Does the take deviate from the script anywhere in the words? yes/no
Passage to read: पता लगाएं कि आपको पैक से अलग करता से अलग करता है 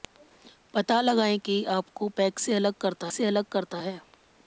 no